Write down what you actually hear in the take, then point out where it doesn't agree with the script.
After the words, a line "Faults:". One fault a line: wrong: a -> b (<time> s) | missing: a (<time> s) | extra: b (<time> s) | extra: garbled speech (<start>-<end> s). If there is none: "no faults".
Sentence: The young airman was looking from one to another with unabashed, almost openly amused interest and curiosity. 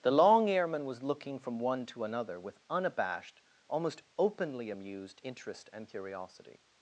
The long airman was looking from one to another with unabashed, almost openly amused interest and curiosity.
Faults:
wrong: young -> long (0.1 s)